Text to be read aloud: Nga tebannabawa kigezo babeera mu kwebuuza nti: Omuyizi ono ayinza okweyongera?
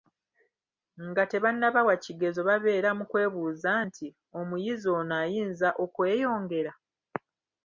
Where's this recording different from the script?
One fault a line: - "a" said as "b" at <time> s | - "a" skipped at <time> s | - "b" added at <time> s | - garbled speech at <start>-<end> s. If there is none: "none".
none